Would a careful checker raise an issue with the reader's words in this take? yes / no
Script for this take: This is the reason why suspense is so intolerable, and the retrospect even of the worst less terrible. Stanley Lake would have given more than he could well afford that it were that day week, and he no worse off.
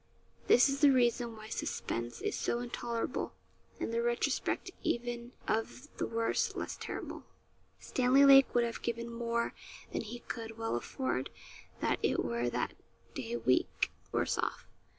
yes